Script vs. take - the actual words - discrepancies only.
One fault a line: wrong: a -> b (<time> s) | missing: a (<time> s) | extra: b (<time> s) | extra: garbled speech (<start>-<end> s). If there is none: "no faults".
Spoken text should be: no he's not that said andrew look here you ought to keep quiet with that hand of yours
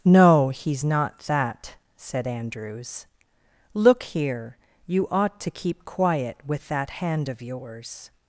wrong: andrew -> andrews (2.3 s)